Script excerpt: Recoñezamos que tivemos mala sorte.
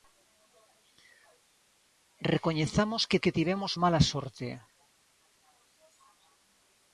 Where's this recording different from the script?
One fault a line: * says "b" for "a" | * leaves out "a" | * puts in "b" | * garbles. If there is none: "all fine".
* puts in "que"